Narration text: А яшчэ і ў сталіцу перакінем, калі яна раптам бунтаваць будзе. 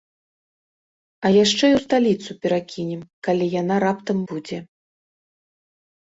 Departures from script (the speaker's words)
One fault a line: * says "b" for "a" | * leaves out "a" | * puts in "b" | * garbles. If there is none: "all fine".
* leaves out "бунтаваць"